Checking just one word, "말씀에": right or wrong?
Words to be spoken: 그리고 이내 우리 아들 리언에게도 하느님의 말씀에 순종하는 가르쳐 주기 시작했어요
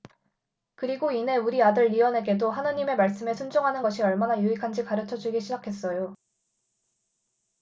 right